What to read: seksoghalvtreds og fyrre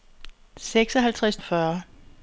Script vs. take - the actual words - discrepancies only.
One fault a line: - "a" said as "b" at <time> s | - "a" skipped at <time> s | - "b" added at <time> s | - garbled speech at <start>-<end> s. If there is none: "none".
none